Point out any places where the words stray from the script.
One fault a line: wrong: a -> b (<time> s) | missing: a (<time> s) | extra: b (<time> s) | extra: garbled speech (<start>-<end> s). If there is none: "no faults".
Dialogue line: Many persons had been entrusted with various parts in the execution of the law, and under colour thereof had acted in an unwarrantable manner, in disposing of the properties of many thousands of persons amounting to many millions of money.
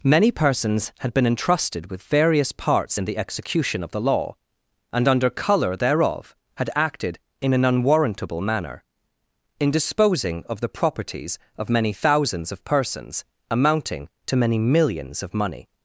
no faults